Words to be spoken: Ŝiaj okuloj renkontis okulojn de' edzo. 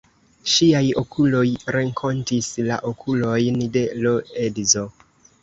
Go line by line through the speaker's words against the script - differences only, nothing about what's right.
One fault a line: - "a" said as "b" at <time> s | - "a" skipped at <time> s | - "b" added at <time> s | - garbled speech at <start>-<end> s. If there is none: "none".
- "la" added at 2.7 s
- "l" added at 4.0 s